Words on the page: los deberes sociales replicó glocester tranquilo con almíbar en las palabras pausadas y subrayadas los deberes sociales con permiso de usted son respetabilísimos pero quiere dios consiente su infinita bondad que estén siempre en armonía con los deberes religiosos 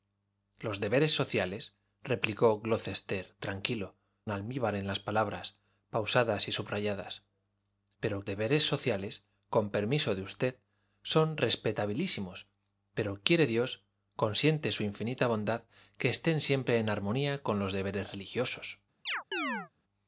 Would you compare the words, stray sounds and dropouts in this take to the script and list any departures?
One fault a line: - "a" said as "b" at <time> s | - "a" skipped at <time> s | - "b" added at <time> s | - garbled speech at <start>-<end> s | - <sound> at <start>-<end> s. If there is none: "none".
- "con" skipped at 4.0 s
- "los" said as "pero" at 8.0 s
- chirp at 19.1-19.7 s